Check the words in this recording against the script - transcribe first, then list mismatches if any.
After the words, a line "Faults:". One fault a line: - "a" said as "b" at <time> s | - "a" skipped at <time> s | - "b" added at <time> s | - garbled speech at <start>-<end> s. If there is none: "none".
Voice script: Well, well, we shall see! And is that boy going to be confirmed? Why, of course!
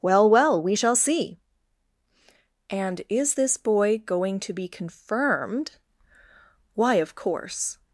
Well, well, we shall see! And is this boy going to be confirmed? Why, of course!
Faults:
- "that" said as "this" at 3.3 s